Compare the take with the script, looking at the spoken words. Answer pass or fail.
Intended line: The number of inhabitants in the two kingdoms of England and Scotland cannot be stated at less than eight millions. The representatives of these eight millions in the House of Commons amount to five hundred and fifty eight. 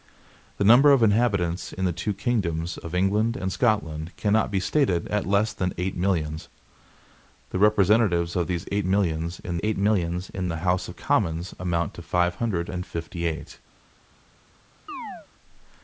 fail